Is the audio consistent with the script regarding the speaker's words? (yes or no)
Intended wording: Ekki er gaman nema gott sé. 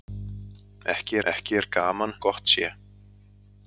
no